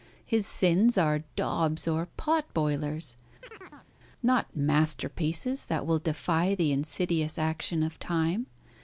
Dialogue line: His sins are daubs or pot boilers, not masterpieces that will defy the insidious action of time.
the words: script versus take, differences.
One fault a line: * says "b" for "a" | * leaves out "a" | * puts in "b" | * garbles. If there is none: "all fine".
all fine